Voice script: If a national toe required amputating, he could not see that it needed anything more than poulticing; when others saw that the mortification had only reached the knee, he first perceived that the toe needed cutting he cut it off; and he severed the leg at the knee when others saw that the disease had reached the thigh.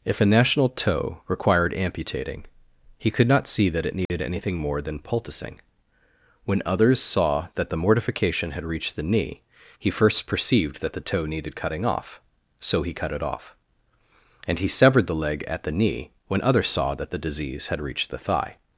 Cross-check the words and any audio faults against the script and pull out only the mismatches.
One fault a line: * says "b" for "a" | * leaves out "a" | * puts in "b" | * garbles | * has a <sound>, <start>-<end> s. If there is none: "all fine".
* has a dropout, 4.1-4.1 s
* leaves out "only"
* puts in "off so"